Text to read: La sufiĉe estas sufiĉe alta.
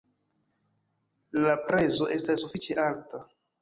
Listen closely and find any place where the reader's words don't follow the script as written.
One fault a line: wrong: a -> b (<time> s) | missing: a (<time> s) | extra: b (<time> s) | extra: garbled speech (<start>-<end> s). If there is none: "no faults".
wrong: sufiĉe -> prezo (1.7 s)